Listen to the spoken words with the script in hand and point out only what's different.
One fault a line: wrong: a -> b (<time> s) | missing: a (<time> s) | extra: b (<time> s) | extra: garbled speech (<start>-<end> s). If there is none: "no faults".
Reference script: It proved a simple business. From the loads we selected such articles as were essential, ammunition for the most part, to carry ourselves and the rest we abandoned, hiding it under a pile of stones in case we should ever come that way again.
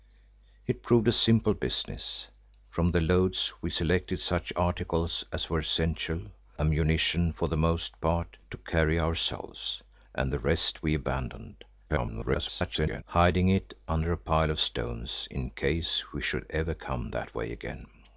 extra: garbled speech (11.9-13.0 s)